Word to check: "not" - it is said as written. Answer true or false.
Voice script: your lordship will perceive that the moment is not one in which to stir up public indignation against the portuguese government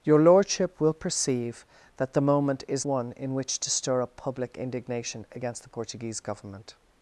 false